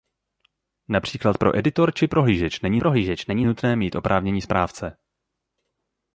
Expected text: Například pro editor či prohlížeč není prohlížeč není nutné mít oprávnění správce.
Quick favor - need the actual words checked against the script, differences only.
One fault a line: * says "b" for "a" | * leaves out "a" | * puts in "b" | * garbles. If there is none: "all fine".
all fine